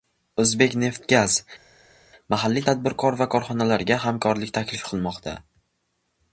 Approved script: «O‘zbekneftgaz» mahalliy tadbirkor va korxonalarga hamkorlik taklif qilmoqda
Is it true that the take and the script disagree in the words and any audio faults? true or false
false